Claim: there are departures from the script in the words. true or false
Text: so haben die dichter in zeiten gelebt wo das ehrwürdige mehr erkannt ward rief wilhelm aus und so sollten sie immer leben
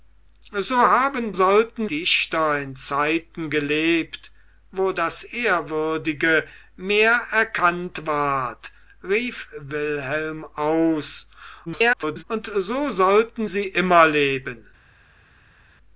true